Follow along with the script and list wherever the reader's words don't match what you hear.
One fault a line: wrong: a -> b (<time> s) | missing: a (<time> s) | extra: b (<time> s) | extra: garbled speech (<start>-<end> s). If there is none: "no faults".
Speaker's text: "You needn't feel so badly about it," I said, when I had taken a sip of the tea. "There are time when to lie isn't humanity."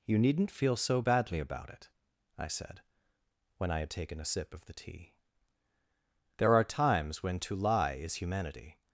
wrong: time -> times (6.6 s)
wrong: isn't -> is (7.9 s)